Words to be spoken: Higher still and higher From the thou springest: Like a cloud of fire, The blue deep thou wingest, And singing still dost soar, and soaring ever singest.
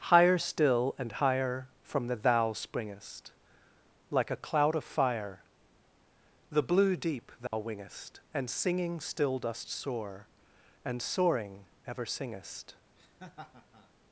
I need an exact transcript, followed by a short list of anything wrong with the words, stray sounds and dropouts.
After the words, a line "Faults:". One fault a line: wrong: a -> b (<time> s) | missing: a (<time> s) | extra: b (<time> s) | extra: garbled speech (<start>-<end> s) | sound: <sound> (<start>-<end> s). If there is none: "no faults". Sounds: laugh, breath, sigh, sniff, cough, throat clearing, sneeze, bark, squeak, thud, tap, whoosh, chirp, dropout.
Higher still and higher From the thou springest: Like a cloud of fire, The blue deep thou wingest, And singing still dost soar, and soaring ever singest.
Faults:
sound: dropout (7.5-7.5 s)
sound: laugh (13.0-13.9 s)